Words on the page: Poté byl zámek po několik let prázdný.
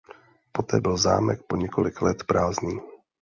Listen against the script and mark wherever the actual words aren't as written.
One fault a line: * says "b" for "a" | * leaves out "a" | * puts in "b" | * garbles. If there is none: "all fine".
all fine